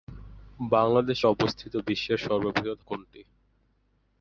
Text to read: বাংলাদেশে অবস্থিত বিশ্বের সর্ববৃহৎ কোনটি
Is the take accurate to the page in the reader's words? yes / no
yes